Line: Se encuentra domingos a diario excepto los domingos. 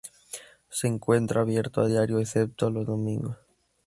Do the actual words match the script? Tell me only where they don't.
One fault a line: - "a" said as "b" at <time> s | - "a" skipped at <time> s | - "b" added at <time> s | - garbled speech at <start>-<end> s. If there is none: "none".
- "domingos" said as "abierto" at 1.4 s